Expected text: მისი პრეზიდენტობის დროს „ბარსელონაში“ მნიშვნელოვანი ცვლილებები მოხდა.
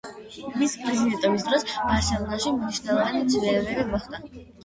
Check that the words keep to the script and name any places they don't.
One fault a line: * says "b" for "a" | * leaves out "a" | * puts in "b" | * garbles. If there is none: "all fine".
all fine